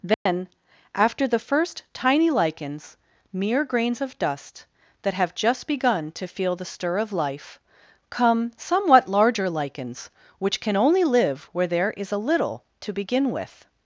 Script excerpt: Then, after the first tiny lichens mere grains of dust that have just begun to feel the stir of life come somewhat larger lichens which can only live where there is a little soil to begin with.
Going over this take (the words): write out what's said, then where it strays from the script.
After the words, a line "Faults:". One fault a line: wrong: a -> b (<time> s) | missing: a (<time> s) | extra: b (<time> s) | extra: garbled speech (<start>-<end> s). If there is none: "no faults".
Then, after the first tiny lichens mere grains of dust that have just begun to feel the stir of life come somewhat larger lichens which can only live where there is a little to begin with.
Faults:
missing: soil (12.6 s)